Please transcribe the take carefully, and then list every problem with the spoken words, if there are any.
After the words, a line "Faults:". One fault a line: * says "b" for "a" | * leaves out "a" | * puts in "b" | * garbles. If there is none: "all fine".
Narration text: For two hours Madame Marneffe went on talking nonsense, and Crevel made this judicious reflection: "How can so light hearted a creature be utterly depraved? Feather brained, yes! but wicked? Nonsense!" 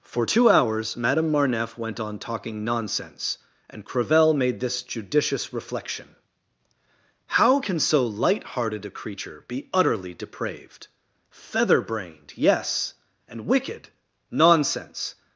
For two hours Madame Marneffe went on talking nonsense, and Crevel made this judicious reflection: "How can so light hearted a creature be utterly depraved? Feather brained, yes! and wicked? Nonsense!"
Faults:
* says "and" for "but"